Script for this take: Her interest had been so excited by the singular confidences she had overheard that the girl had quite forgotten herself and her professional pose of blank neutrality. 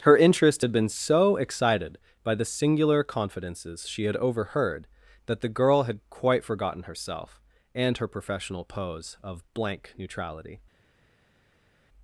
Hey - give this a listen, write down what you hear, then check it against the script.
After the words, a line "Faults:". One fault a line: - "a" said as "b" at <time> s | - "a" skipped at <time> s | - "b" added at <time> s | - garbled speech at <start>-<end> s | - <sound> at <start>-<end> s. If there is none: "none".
Her interest had been so excited by the singular confidences she had overheard that the girl had quite forgotten herself and her professional pose of blank neutrality.
Faults:
none